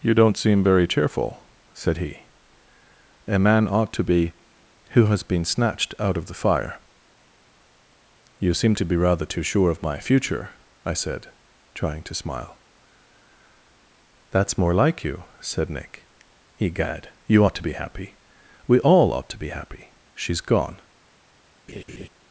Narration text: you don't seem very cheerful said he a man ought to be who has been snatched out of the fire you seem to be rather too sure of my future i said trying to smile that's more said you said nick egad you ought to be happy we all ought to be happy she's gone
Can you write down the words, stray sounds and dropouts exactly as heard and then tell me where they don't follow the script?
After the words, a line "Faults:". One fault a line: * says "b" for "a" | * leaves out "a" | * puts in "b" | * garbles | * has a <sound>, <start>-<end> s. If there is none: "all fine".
you don't seem very cheerful said he a man ought to be who has been snatched out of the fire you seem to be rather too sure of my future i said trying to smile that's more like you said nick egad you ought to be happy we all ought to be happy she's gone
Faults:
* says "like" for "said"
* has a laugh, 21.7-22.1 s